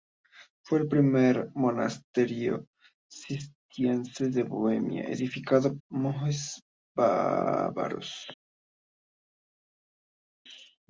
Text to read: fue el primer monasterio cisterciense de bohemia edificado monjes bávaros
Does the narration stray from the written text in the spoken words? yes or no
no